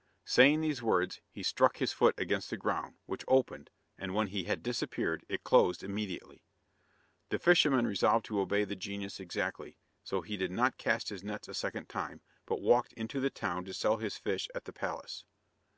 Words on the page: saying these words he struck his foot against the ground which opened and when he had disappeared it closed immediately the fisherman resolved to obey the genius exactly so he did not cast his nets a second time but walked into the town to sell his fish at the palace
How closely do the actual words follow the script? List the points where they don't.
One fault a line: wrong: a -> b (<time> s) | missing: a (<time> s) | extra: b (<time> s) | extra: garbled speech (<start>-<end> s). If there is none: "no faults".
no faults